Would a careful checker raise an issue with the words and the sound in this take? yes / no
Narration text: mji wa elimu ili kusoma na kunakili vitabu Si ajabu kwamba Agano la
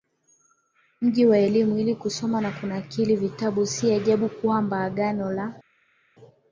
no